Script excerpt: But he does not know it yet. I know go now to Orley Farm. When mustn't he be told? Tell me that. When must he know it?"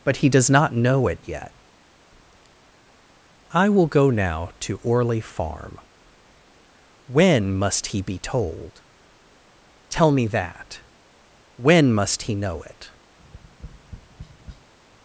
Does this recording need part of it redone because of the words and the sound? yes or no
yes